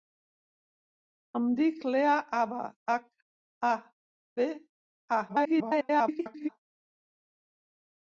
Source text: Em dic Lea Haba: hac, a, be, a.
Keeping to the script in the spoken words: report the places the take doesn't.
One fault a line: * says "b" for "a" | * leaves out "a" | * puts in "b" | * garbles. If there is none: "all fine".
* garbles